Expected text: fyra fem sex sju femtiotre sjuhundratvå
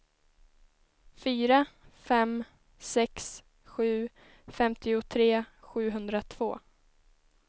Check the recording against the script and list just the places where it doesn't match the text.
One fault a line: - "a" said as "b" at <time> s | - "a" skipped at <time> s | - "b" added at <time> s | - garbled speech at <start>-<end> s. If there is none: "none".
none